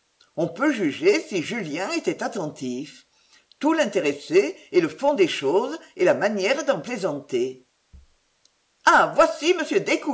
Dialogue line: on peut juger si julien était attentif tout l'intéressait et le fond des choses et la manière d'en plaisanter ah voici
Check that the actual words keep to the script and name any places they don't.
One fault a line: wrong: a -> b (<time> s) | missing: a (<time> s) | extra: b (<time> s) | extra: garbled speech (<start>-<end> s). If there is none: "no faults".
no faults